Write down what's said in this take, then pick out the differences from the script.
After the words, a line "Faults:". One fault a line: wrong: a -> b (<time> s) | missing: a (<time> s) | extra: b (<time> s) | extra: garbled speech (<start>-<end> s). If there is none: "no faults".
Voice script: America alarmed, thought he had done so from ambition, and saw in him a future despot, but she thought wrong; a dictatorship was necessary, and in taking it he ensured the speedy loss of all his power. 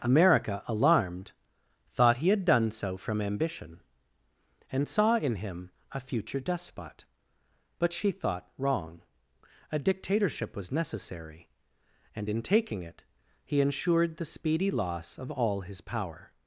America alarmed, thought he had done so from ambition, and saw in him a future despot, but she thought wrong; a dictatorship was necessary, and in taking it he ensured the speedy loss of all his power.
Faults:
no faults